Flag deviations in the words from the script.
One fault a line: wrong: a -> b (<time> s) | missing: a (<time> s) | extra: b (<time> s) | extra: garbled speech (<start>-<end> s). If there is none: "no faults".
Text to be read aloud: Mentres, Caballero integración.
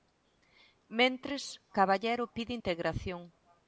extra: pide (2.4 s)